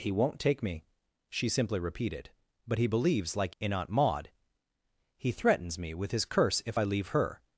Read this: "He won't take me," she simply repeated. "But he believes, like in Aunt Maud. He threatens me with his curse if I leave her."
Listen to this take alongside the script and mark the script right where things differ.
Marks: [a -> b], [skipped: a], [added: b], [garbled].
"He won't take me," she simply repeated. "But he believes, like in Aunt Maud. He threatens me with his curse if I leave her."